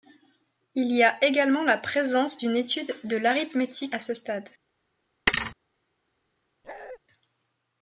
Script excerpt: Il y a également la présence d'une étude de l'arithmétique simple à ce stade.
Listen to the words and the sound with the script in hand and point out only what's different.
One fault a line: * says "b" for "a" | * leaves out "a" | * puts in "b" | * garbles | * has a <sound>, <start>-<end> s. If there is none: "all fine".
* leaves out "simple"
* has a thud, 5.3-5.6 s
* has a bark, 6.6-7.0 s